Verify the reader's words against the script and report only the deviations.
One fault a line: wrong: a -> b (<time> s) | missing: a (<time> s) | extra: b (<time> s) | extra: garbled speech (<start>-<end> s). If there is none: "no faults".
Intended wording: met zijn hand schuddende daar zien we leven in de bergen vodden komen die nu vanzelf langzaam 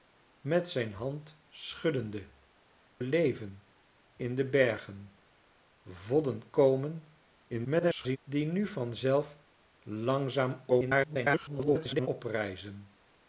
missing: daar zien we (2.3 s)
extra: garbled speech (7.5-8.2 s)
extra: garbled speech (10.7-12.1 s)